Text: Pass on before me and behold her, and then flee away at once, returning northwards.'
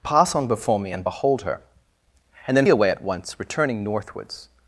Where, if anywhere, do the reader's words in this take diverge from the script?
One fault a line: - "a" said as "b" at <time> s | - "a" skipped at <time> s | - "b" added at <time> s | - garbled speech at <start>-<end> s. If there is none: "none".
- "flee" skipped at 2.7 s